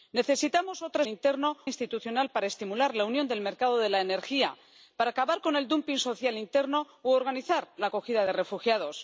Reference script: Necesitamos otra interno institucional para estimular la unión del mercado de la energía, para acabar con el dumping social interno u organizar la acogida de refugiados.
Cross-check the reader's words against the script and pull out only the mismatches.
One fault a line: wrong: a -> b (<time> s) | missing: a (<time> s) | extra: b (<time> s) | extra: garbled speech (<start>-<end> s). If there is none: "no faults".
no faults